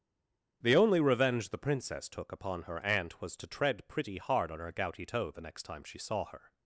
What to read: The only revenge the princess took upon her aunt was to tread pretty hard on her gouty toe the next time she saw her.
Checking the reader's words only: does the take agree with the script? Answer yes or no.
yes